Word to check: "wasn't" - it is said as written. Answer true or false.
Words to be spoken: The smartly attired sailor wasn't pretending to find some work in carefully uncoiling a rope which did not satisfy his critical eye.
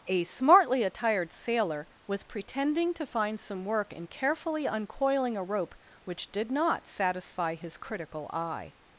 false